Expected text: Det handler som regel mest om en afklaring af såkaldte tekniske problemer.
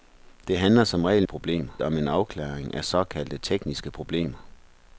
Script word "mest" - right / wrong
wrong